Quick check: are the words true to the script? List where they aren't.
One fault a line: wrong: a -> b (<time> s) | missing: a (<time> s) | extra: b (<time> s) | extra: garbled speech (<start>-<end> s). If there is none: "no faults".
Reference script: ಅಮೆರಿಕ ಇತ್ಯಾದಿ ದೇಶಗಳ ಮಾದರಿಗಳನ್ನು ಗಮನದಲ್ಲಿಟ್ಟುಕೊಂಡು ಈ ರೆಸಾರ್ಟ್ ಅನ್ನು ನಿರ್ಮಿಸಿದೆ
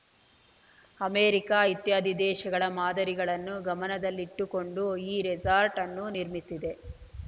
no faults